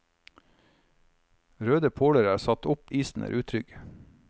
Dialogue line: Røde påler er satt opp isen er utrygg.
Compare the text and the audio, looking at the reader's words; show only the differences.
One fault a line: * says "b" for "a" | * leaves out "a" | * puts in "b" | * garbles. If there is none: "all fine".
all fine